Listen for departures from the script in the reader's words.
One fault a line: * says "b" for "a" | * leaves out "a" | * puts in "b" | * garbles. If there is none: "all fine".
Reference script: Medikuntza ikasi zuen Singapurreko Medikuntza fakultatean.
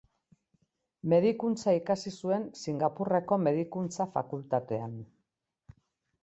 all fine